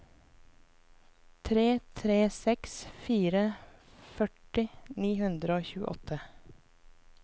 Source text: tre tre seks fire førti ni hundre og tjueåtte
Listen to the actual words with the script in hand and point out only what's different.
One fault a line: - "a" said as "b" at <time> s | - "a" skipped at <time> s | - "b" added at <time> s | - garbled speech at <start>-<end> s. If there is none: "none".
none